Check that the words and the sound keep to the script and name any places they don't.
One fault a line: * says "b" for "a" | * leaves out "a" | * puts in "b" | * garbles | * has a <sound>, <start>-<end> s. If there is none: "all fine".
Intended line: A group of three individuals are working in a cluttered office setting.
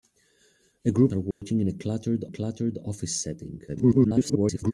* leaves out "of three individuals"
* has a dropout, 1.3-1.4 s
* puts in "cluttered"
* garbles